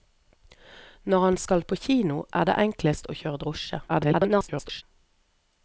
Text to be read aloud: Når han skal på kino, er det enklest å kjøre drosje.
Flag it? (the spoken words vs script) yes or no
yes